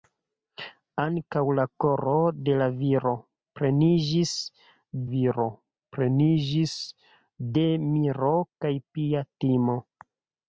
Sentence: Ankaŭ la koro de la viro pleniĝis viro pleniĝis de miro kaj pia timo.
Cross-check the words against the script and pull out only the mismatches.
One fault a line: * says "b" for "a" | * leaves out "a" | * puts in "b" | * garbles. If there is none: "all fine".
all fine